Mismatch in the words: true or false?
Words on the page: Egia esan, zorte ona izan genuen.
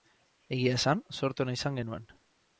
false